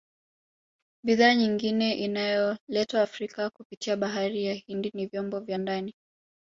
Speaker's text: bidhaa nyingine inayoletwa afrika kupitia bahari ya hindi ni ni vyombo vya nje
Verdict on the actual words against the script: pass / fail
fail